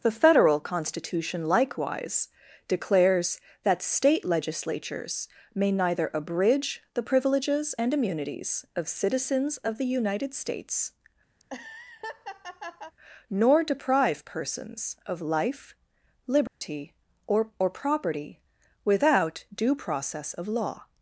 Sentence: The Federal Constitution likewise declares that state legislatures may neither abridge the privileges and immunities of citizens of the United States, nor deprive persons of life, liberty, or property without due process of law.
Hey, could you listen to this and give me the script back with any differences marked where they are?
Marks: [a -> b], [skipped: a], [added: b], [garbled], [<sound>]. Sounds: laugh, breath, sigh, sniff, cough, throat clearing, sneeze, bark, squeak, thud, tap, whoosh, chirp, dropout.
The Federal Constitution likewise declares that state legislatures may neither abridge the privileges and immunities of citizens of the United States, [laugh] nor deprive persons of life, liberty, [dropout] or [added: or] property without due process of law.